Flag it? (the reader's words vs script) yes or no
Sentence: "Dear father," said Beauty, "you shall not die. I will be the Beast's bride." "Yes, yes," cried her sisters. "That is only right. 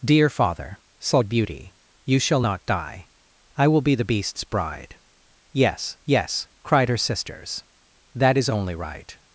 no